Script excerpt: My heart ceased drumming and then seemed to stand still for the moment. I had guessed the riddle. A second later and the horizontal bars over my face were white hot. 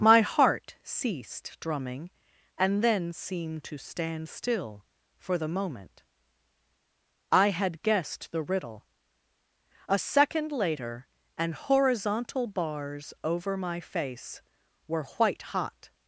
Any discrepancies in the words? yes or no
yes